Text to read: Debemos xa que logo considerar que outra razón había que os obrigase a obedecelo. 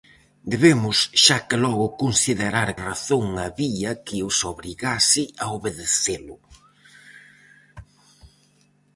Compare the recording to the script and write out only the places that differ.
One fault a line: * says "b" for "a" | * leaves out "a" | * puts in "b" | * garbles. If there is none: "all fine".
* leaves out "que outra"